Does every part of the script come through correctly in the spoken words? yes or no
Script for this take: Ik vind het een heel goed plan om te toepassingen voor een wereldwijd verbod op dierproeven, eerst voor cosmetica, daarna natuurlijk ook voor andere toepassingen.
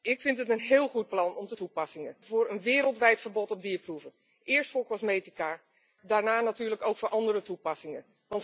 yes